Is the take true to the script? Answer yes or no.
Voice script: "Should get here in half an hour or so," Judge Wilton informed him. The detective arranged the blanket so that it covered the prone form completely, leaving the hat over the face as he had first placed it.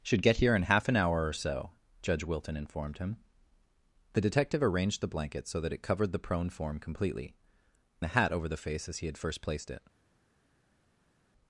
no